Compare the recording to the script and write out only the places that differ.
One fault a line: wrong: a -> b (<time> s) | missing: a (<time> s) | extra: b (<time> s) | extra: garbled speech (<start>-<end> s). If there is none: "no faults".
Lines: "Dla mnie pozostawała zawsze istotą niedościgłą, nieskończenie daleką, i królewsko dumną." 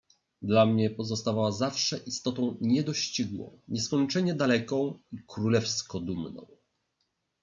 no faults